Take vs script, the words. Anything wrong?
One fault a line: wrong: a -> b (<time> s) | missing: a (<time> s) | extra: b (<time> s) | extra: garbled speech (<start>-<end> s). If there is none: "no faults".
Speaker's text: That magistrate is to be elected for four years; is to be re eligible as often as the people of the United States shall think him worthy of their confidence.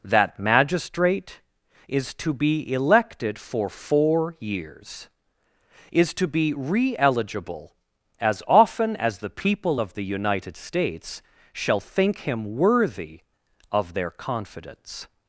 no faults